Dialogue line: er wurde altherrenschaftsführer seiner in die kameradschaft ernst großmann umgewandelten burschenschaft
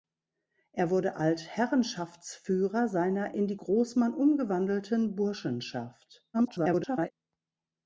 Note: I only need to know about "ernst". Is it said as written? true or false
false